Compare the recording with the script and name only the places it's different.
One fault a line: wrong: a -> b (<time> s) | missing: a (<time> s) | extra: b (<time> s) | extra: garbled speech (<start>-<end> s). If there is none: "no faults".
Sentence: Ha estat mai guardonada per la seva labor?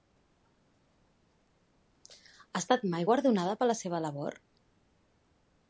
no faults